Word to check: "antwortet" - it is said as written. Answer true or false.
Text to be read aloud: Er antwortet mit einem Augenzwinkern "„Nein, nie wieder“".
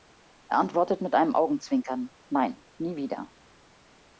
true